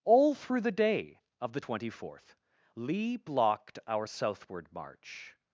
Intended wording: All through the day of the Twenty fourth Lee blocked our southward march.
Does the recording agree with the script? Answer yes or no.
yes